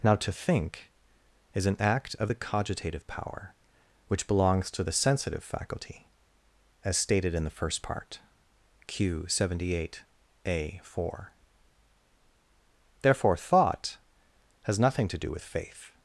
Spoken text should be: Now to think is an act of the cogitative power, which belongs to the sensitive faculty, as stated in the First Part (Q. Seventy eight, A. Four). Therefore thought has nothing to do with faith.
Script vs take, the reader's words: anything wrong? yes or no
no